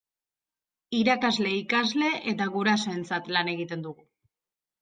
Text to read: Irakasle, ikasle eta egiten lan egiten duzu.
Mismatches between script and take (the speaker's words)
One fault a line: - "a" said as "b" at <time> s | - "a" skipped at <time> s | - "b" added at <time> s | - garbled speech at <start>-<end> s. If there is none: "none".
- "egiten" said as "gurasoentzat" at 2.6 s
- "duzu" said as "dugu" at 3.9 s